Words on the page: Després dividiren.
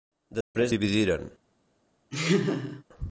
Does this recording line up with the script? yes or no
yes